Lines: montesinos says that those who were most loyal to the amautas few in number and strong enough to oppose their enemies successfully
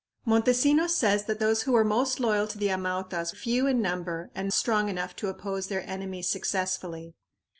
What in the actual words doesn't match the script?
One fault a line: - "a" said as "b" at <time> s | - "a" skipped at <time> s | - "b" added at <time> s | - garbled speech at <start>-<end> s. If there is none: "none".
none